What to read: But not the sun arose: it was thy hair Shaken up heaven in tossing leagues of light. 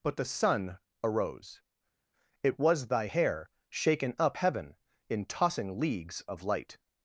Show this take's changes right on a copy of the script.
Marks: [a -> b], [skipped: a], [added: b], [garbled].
But [skipped: not] the sun arose: it was thy hair Shaken up heaven in tossing leagues of light.